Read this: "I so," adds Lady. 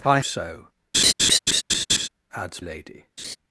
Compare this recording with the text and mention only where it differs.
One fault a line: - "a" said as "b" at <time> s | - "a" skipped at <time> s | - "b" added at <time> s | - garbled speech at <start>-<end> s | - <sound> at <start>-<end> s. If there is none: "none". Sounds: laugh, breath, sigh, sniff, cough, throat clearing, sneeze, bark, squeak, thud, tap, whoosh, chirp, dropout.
- laugh at 0.9-2.1 s
- laugh at 3.2-3.4 s